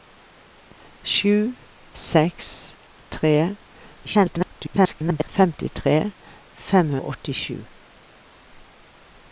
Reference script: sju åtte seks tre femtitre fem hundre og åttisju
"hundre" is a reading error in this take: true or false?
true